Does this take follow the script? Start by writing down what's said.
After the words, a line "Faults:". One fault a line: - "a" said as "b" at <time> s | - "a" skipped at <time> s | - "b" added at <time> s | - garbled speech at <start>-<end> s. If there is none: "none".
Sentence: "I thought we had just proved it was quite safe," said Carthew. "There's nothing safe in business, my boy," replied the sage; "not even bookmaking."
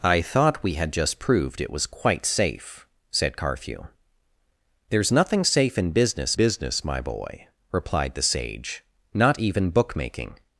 "I thought we had just proved it was quite safe," said Carthew. "There's nothing safe in business business, my boy," replied the sage; "not even bookmaking."
Faults:
- "business" added at 6.3 s